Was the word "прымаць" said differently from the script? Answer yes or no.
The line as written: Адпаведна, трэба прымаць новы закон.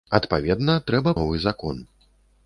yes